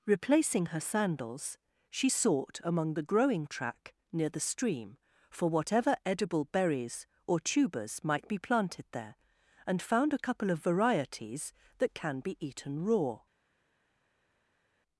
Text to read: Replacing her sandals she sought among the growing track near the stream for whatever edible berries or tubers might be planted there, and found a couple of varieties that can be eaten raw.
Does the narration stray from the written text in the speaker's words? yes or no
no